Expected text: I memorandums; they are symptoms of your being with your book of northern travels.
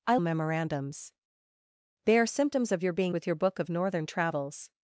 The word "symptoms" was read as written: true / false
true